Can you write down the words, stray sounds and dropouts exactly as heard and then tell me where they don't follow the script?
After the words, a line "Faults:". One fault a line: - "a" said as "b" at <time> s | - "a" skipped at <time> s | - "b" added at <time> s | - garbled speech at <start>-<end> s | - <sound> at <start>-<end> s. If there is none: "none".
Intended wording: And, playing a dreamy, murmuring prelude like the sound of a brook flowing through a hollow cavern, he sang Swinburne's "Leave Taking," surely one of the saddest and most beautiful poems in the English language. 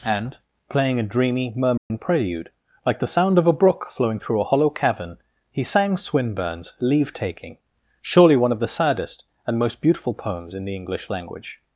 And, playing a dreamy, murmuring prelude like the sound of a brook flowing through a hollow cavern, he sang Swinburne's "Leave Taking," surely one of the saddest and most beautiful poems in the English language.
Faults:
- dropout at 1.8-1.9 s